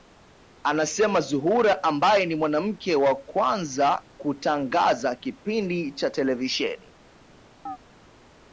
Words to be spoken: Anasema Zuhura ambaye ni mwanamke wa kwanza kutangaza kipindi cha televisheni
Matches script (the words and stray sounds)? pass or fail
fail